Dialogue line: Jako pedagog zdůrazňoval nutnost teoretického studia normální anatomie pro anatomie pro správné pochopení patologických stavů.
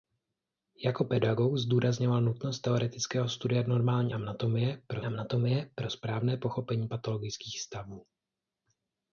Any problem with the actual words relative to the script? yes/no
no